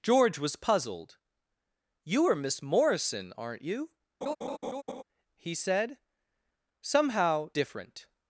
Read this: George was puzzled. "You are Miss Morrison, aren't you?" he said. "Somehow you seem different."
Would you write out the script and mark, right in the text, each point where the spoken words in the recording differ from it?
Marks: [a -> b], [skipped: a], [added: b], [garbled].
George was puzzled. "You are Miss Morrison, aren't you?" he said. "Somehow [skipped: you seem] different."